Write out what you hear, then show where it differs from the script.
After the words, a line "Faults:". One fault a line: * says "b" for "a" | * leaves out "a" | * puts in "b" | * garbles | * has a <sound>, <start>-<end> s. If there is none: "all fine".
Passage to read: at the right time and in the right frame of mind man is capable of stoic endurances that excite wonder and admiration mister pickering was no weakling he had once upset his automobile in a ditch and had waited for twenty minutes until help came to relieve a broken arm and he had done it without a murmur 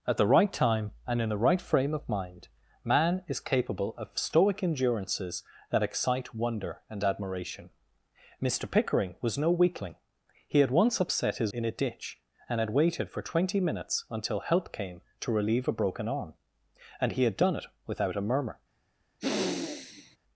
at the right time and in the right frame of mind man is capable of stoic endurances that excite wonder and admiration mister pickering was no weakling he had once upset his in a ditch and had waited for twenty minutes until help came to relieve a broken arm and he had done it without a murmur
Faults:
* leaves out "automobile"
* has a sniff, 19.2-20.2 s